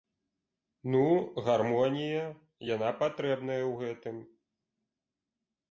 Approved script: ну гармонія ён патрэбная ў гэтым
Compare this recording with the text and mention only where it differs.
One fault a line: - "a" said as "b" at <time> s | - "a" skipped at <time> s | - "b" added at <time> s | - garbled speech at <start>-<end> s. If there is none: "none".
- "ён" said as "яна" at 2.7 s